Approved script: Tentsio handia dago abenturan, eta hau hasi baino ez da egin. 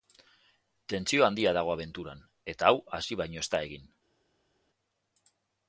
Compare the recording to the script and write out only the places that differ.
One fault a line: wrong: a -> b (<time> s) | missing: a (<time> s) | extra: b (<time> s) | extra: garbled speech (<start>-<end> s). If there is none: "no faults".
no faults